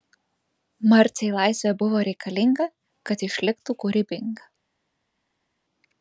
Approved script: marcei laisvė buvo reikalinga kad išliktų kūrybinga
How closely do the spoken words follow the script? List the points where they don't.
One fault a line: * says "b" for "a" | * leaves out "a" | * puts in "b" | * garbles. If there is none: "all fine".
all fine